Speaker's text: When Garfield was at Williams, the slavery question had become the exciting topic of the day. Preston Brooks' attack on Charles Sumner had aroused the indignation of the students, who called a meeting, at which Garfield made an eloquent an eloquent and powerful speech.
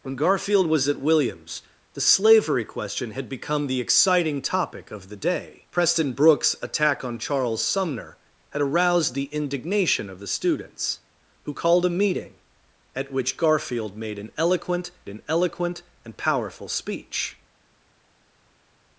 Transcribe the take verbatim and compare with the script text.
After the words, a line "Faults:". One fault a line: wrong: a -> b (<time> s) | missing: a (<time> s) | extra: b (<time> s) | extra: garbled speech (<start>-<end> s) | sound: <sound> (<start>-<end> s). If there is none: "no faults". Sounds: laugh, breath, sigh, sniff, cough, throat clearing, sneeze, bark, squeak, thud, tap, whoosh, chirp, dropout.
When Garfield was at Williams, the slavery question had become the exciting topic of the day. Preston Brooks' attack on Charles Sumner had aroused the indignation of the students, who called a meeting, at which Garfield made an eloquent an eloquent and powerful speech.
Faults:
no faults